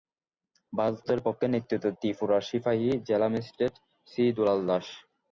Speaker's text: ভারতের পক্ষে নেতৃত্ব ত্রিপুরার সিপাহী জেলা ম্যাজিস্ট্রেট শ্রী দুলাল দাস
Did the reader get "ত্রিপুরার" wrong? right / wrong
right